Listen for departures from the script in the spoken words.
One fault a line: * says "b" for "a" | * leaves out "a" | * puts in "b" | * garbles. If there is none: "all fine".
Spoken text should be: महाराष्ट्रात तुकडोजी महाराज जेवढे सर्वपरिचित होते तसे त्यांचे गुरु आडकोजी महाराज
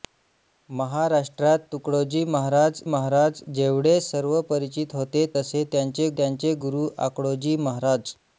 * puts in "महाराज"
* puts in "त्यांचे"